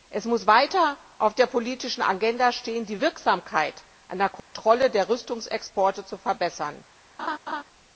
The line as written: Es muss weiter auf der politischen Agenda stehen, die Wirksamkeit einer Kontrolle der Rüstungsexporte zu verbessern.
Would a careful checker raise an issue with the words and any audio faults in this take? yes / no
yes